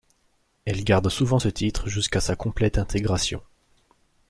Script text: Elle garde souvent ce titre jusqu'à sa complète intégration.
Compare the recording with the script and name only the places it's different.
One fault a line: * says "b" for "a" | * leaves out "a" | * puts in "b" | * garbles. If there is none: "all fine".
all fine